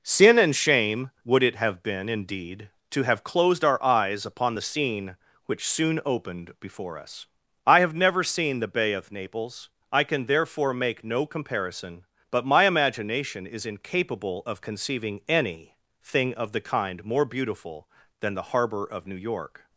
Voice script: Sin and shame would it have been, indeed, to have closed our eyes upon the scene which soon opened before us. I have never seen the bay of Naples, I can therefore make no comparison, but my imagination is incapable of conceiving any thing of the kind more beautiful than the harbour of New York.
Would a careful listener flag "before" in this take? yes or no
no